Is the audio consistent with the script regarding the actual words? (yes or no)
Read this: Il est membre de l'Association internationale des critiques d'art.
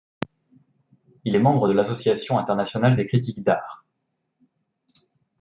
yes